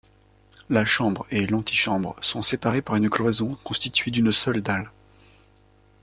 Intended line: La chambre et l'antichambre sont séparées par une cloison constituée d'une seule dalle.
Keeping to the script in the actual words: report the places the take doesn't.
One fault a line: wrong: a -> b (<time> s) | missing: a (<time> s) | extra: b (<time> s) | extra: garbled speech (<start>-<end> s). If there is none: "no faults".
no faults